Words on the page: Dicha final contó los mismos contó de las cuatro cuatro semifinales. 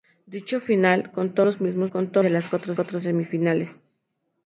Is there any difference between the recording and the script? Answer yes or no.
no